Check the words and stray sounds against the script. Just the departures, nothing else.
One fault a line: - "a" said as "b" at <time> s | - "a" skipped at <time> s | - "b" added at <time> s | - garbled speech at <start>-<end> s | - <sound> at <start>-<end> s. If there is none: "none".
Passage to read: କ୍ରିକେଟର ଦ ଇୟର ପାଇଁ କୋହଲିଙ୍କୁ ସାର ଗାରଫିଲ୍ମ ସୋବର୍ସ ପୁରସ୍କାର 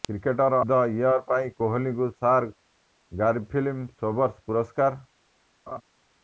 - laugh at 5.7-5.8 s